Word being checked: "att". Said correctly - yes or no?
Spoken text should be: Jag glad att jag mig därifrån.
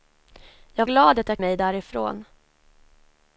yes